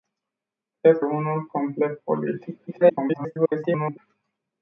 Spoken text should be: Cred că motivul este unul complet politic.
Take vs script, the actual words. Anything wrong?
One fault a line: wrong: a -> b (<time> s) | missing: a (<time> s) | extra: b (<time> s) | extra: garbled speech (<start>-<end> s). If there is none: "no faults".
missing: că motivul este (1.0 s)
extra: garbled speech (2.7-4.0 s)